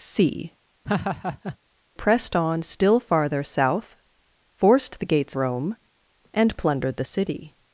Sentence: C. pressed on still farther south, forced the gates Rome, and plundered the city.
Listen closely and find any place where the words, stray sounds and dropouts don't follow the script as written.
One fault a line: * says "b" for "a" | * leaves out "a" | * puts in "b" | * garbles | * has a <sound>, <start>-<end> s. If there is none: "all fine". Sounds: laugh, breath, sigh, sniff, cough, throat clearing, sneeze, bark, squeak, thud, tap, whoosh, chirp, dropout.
* has a laugh, 0.9-1.6 s